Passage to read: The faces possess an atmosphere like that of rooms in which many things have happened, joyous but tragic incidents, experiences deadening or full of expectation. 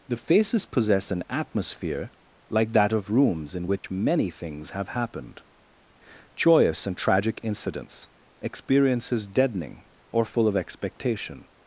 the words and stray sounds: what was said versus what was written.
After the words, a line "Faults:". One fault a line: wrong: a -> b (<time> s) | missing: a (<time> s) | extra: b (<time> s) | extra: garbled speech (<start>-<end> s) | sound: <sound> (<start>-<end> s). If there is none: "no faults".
The faces possess an atmosphere like that of rooms in which many things have happened, joyous and tragic incidents, experiences deadening or full of expectation.
Faults:
sound: dropout (3.8-3.8 s)
wrong: but -> and (6.9 s)